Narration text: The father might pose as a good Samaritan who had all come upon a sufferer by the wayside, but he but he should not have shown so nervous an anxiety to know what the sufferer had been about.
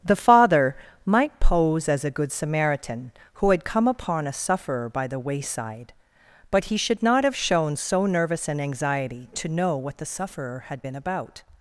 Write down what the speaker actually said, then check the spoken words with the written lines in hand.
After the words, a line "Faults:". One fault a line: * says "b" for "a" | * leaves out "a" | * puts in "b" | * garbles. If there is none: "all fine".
The father might pose as a good Samaritan who had come upon a sufferer by the wayside, but he should not have shown so nervous an anxiety to know what the sufferer had been about.
Faults:
* leaves out "all"
* leaves out "but he"